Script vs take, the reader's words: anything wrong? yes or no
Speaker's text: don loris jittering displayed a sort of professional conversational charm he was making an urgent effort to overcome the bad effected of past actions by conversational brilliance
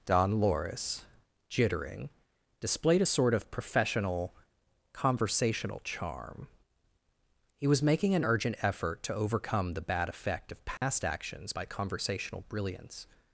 yes